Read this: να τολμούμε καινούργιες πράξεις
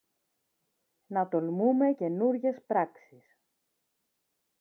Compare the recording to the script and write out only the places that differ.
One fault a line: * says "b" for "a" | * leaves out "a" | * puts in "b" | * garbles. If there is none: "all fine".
all fine